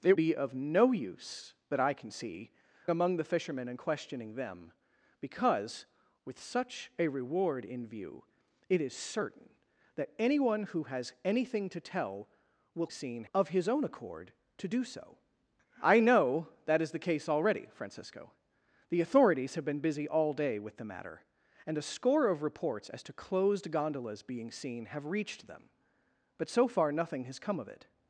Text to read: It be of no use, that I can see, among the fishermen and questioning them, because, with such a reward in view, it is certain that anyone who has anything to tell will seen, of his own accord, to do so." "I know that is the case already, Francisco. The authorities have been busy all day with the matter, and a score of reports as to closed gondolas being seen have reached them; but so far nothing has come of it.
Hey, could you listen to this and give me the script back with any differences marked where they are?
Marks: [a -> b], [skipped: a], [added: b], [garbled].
It be of no use, that I can see, among the fishermen and questioning them, because, with such a reward in view, it is certain that anyone who has anything to tell will seen, of his own accord, to do so." "I know that is the case already, Francisco. The authorities have been busy all day with the matter, and a score of reports as to closed gondolas being seen have reached them; but so far nothing has come of it.